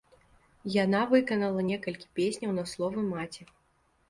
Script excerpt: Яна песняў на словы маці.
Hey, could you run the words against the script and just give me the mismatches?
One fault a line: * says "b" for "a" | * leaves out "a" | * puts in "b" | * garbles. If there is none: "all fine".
* puts in "выканала некалькі"